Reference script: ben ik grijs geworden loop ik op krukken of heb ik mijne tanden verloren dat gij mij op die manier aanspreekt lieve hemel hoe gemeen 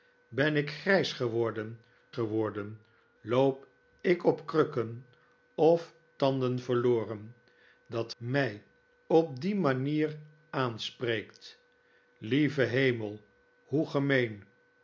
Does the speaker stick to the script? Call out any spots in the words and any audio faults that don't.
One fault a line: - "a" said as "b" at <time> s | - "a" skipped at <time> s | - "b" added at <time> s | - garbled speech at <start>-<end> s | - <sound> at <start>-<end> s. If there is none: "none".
- "geworden" added at 2.1 s
- "heb ik mijne" skipped at 5.9 s
- "gij" skipped at 8.1 s